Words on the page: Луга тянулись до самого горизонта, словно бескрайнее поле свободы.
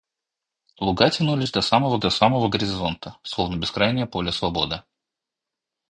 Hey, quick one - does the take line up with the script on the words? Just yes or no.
no